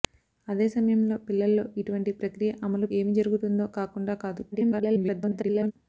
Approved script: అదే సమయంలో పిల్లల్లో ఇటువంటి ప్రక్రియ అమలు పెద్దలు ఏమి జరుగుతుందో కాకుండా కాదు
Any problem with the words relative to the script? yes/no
yes